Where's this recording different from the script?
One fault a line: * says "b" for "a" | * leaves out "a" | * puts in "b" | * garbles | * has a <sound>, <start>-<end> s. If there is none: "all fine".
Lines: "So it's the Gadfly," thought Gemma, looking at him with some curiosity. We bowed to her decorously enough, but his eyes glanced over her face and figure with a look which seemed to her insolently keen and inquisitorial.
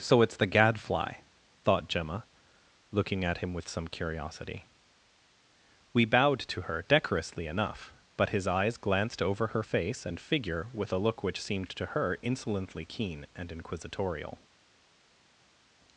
all fine